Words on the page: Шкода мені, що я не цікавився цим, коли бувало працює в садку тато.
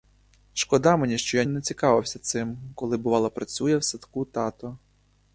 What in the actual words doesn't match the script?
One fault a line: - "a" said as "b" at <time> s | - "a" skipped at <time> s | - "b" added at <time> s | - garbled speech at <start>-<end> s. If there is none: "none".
none